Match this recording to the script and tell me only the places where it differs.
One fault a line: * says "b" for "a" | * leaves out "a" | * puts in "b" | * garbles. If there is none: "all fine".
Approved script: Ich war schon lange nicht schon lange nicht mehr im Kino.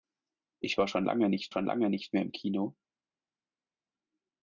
all fine